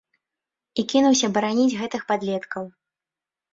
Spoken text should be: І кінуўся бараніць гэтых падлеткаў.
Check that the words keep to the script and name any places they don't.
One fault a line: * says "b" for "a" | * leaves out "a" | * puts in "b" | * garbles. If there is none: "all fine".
all fine